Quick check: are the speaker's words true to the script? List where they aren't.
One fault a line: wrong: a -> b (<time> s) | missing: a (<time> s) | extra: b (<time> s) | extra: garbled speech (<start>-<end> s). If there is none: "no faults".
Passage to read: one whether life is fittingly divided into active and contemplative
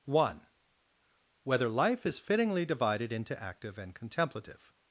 no faults